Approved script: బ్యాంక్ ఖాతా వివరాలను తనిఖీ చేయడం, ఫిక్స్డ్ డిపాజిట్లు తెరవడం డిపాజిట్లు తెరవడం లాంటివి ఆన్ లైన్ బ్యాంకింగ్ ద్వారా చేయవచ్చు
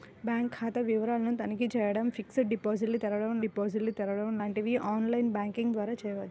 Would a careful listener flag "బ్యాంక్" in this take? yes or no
no